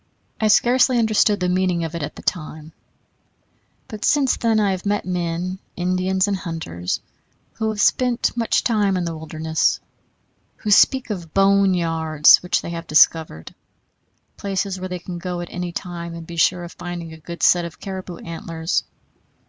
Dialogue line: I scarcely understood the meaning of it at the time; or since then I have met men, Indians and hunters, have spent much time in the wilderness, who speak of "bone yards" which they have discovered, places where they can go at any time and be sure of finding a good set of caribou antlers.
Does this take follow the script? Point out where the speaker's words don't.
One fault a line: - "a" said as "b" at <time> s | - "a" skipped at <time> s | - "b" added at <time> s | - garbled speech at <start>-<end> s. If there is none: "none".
- "or" said as "but" at 3.9 s
- "who" added at 7.5 s